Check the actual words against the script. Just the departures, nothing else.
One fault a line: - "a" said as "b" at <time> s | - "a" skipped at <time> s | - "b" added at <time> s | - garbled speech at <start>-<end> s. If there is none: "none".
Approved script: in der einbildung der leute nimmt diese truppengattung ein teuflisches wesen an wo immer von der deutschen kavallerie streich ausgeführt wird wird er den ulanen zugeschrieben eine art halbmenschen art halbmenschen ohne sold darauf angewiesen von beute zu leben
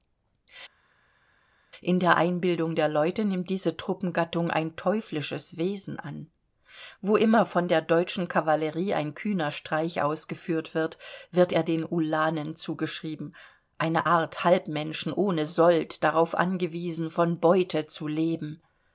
- "ein kühner" added at 8.9 s
- "art halbmenschen" skipped at 15.1 s